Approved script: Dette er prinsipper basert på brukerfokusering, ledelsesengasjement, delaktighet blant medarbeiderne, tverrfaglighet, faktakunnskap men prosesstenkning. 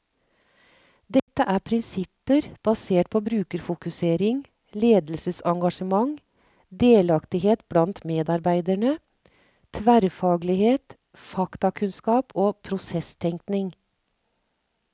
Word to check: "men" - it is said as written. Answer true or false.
false